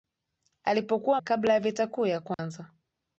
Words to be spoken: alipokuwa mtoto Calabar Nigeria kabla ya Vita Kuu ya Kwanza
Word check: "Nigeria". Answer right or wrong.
wrong